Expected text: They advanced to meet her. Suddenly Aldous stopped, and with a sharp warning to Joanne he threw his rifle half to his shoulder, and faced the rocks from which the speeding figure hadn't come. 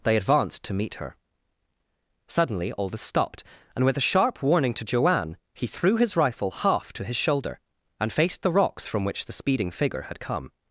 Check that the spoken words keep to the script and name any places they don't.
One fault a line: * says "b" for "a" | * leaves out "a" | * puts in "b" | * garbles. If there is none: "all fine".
* says "had" for "hadn't"